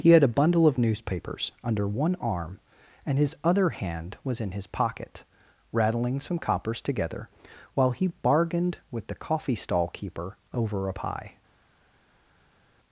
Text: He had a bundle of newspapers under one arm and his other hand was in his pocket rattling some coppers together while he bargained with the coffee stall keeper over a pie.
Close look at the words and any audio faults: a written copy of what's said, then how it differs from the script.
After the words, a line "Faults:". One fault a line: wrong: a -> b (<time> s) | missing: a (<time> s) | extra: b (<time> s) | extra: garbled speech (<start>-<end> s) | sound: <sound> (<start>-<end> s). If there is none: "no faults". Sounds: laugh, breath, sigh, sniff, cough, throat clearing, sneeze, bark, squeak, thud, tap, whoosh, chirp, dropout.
He had a bundle of newspapers under one arm and his other hand was in his pocket rattling some coppers together while he bargained with the coffee stall keeper over a pie.
Faults:
no faults